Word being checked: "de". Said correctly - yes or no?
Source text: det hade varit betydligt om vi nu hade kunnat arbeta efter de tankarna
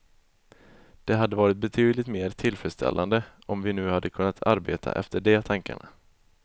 yes